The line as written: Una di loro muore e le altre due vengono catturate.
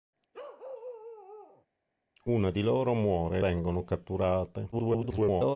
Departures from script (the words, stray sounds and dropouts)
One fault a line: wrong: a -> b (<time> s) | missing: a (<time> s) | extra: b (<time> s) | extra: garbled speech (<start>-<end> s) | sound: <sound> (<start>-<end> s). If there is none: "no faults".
sound: bark (0.3-1.7 s)
missing: le altre due (3.4 s)
extra: garbled speech (4.7-5.6 s)